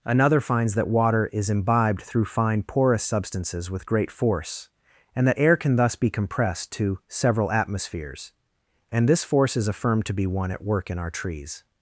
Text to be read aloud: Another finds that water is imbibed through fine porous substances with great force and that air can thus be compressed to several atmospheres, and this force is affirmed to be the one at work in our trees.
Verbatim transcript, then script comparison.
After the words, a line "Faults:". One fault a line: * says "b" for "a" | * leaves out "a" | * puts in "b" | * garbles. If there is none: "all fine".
Another finds that water is imbibed through fine porous substances with great force and that air can thus be compressed to several atmospheres, and this force is affirmed to be one at work in our trees.
Faults:
* leaves out "the"